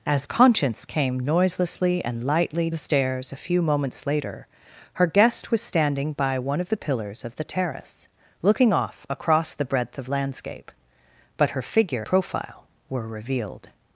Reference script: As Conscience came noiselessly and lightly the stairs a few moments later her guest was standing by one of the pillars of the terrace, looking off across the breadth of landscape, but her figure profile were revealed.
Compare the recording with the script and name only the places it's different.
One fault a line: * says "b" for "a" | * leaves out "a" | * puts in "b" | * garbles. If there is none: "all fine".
all fine